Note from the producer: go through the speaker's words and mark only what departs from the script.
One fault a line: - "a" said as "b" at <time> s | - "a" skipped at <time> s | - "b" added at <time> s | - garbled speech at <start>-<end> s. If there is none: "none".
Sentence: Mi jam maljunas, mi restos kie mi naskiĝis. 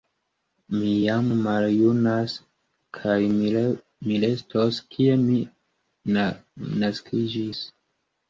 - "kaj" added at 3.0 s